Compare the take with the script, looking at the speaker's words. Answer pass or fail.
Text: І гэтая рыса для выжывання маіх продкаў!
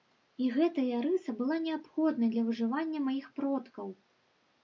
fail